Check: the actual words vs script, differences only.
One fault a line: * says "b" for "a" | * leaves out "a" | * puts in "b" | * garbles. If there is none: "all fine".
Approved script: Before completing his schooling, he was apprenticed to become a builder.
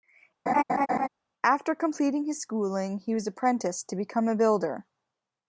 * says "After" for "Before"